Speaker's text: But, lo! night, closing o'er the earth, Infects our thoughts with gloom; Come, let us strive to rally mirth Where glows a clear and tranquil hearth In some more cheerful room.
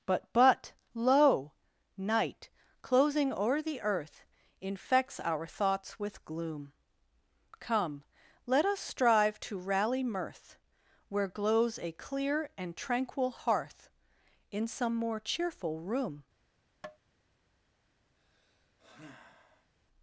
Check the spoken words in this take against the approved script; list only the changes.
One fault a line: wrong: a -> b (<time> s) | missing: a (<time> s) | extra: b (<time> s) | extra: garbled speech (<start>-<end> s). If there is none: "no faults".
extra: but (0.3 s)